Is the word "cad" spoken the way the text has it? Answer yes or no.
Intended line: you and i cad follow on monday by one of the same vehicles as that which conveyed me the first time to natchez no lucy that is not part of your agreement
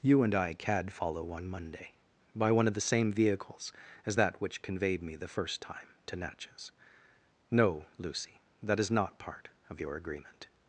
yes